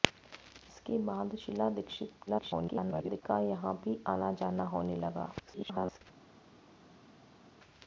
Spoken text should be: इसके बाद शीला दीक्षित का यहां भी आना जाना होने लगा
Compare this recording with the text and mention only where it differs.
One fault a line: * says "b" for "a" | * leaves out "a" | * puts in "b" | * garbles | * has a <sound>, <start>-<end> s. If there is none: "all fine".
* garbles
* garbles